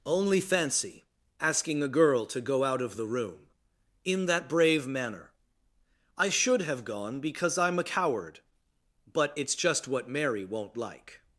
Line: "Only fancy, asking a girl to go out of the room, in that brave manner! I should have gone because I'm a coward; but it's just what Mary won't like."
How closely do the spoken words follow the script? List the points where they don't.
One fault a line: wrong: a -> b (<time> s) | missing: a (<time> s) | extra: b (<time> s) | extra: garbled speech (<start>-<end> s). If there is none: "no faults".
no faults